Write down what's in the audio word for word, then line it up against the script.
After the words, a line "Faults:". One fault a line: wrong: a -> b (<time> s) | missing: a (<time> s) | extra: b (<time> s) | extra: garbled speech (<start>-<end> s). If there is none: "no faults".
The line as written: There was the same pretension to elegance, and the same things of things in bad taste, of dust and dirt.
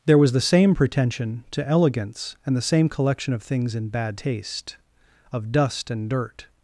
There was the same pretension to elegance, and the same collection of things in bad taste, of dust and dirt.
Faults:
wrong: things -> collection (2.9 s)